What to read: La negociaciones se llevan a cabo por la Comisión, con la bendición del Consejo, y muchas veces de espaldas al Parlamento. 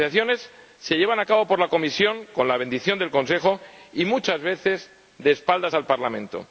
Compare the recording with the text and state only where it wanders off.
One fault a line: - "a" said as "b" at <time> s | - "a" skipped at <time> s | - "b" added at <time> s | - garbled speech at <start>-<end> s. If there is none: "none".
- "La" said as "Las" at 0.0 s